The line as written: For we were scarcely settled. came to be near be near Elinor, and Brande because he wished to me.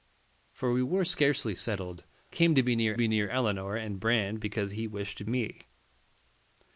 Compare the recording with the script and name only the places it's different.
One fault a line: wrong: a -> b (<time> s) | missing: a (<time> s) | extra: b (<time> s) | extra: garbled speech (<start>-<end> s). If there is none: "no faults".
no faults